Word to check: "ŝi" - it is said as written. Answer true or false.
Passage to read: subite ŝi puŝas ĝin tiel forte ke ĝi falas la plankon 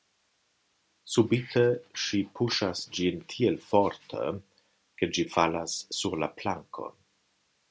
true